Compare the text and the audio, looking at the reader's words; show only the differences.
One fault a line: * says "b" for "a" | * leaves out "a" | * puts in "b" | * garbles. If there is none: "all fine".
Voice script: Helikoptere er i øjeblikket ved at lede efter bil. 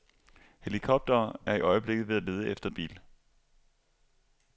all fine